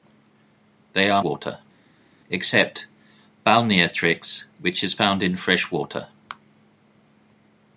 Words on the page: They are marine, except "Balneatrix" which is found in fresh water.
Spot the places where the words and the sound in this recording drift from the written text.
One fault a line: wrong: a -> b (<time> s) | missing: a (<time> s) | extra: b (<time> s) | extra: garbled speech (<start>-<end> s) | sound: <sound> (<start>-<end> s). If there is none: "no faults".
wrong: marine -> water (1.2 s)